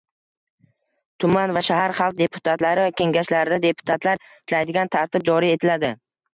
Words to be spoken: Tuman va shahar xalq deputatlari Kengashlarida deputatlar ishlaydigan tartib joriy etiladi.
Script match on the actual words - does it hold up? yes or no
yes